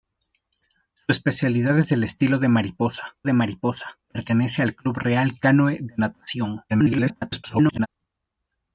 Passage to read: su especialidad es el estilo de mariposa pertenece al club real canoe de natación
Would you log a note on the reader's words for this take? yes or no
yes